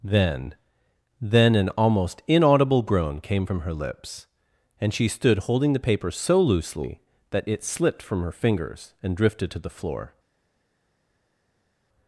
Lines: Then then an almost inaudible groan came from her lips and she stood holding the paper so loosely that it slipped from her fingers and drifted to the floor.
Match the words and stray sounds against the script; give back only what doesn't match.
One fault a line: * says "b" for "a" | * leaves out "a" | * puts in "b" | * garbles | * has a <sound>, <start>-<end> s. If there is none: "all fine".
all fine